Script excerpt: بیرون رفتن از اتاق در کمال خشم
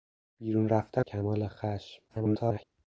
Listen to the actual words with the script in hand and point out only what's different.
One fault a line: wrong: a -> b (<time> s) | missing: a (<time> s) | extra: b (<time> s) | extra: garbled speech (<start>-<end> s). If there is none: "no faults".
missing: از اتاق در (1.1 s)
extra: garbled speech (2.1-2.6 s)